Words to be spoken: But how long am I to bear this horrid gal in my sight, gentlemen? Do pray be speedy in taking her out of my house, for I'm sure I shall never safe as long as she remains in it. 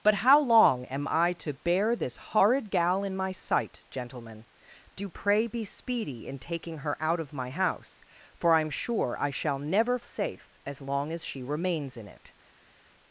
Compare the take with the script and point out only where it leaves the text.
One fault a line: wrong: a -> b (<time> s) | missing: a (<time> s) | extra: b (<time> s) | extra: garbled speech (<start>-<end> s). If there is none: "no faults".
no faults